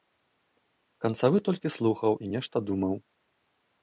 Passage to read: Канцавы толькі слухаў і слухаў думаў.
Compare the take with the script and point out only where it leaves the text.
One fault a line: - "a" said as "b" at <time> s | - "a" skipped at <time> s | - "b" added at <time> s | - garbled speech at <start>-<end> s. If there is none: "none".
- "слухаў" said as "нешта" at 2.3 s